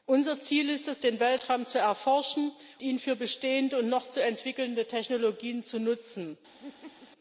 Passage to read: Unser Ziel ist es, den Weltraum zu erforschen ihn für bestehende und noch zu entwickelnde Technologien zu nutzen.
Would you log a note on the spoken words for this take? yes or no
no